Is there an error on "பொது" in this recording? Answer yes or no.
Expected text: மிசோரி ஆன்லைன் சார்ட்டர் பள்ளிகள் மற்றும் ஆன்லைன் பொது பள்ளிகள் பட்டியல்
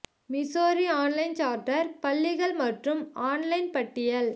yes